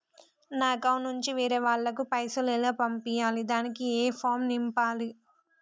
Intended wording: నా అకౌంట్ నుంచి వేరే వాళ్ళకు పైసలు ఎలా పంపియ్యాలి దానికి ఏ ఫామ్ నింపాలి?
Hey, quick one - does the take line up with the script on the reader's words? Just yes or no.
yes